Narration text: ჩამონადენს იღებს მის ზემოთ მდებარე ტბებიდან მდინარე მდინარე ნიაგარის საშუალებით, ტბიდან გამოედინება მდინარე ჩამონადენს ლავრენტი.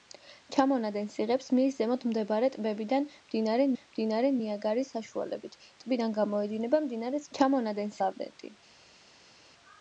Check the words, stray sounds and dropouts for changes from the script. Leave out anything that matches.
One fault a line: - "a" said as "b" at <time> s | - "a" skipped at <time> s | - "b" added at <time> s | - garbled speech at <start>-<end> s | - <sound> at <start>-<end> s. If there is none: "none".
none